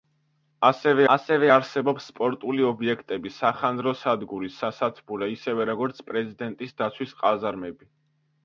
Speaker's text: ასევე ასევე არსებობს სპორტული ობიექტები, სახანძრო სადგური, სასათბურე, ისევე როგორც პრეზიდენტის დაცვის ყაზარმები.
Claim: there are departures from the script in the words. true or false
false